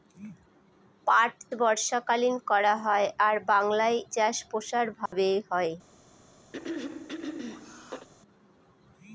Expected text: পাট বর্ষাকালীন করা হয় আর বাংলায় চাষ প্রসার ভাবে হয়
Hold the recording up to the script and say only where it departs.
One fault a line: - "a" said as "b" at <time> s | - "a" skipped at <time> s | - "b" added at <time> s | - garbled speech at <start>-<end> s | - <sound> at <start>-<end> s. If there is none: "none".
- dropout at 5.1-5.1 s
- throat clearing at 6.5-8.1 s